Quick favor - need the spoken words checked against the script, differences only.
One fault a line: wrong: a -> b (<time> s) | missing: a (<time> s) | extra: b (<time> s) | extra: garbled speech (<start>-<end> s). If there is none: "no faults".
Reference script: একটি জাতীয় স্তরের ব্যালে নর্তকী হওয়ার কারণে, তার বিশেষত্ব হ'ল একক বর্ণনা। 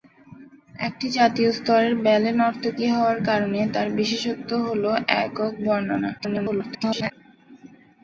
extra: garbled speech (6.2-7.1 s)